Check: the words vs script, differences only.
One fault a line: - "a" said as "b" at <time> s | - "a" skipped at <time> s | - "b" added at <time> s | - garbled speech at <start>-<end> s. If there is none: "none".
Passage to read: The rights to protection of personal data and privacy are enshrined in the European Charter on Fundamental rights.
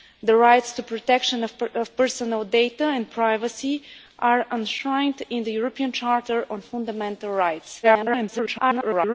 - garbled speech at 7.8-9.1 s